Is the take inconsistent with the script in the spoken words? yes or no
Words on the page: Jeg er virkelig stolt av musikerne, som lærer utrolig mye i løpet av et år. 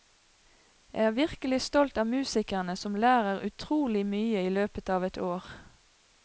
no